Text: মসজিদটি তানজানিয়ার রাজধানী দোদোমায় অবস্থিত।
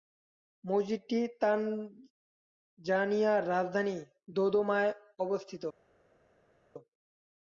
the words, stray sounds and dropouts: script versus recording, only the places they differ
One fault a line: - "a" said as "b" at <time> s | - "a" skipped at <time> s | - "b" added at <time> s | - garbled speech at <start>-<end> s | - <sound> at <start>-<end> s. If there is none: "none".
none